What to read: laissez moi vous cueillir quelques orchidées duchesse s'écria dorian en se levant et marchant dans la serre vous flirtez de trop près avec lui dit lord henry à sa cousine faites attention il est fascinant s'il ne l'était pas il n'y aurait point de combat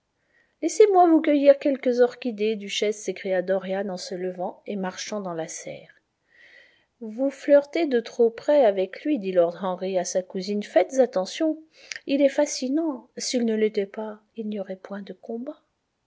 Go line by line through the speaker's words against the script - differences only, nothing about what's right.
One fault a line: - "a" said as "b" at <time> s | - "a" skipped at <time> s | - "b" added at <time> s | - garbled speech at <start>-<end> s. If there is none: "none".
none